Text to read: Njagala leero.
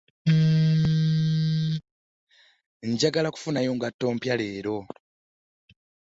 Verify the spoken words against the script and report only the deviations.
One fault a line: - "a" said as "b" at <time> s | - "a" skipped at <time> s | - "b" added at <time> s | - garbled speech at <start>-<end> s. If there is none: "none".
- "kufunayo ngatto mpya" added at 3.3 s